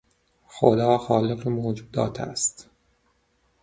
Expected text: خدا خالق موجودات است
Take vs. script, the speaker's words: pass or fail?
pass